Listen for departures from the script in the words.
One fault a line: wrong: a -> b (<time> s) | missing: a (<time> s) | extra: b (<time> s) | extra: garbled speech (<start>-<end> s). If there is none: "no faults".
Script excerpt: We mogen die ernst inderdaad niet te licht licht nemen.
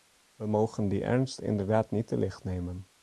missing: licht (2.4 s)